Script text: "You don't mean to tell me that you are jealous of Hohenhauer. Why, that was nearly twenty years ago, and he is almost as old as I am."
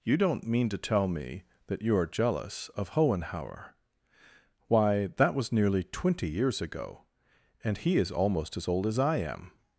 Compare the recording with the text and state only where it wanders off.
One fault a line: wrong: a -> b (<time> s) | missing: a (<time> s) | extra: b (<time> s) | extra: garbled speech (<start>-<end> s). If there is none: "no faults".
no faults